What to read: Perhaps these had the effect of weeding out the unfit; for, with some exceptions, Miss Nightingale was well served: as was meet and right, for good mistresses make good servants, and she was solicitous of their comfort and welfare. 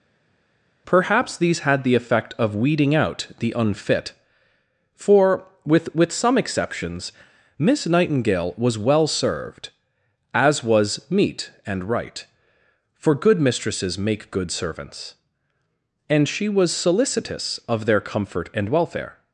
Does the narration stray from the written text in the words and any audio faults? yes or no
yes